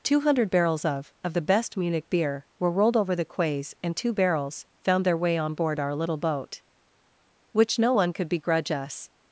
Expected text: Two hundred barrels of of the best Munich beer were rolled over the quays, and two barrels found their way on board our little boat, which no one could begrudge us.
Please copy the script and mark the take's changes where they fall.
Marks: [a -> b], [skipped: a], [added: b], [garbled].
Two hundred barrels of of the best Munich beer were rolled over the quays, and two barrels found their way on board our little boat, which no one could begrudge us.